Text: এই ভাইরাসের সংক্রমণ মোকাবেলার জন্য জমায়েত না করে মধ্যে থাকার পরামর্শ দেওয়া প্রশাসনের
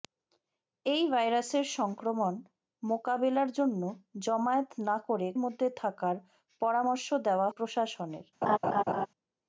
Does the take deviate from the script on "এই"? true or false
false